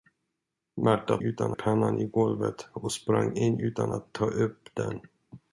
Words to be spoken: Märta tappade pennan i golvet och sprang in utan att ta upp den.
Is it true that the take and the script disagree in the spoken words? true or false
true